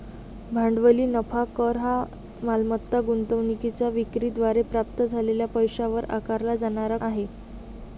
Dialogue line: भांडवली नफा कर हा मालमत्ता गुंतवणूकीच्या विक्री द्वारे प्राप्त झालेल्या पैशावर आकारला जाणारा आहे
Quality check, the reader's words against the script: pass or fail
pass